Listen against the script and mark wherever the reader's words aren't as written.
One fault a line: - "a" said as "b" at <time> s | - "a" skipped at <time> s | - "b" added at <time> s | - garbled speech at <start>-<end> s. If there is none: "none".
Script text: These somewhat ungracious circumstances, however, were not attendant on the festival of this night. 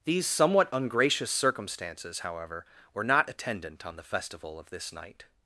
none